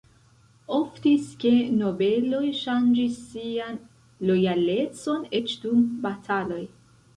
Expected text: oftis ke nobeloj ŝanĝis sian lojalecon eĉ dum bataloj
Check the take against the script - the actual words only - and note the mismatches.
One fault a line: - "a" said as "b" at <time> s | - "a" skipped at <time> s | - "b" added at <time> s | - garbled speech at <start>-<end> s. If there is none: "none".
none